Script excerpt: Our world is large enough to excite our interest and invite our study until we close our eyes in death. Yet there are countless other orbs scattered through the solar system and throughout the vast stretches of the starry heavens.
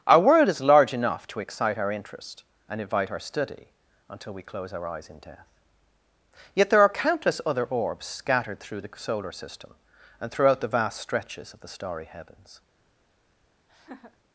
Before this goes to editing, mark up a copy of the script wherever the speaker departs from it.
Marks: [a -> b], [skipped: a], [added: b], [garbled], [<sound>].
Our world is large enough to excite our interest and invite our study until we close our eyes in death. Yet there are countless other orbs scattered through the solar system and throughout the vast stretches of the starry heavens. [laugh]